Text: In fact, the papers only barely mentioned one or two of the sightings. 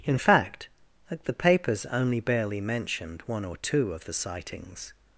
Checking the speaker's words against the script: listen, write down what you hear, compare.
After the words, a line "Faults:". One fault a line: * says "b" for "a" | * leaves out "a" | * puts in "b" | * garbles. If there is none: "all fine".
In fact, the papers only barely mentioned one or two of the sightings.
Faults:
all fine